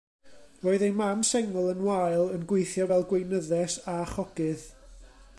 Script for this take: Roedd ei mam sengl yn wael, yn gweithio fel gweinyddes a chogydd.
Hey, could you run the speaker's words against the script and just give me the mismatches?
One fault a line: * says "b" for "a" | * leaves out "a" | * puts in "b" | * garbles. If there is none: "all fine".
all fine